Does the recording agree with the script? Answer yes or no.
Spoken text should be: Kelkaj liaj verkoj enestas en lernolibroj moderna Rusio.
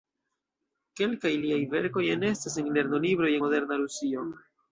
yes